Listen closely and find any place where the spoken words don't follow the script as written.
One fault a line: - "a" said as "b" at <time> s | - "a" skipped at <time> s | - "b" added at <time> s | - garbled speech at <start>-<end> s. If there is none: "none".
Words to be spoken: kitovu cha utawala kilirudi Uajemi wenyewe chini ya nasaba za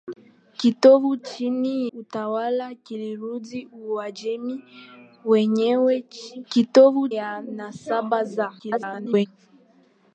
- "cha" said as "chini" at 1.2 s
- "chini" said as "kitovu" at 6.5 s
- garbled speech at 8.6-9.3 s